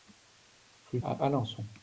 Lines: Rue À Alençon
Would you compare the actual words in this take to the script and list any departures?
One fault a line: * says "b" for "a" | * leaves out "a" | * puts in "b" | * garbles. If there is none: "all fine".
all fine